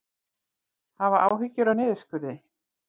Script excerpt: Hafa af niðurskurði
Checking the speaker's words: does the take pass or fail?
fail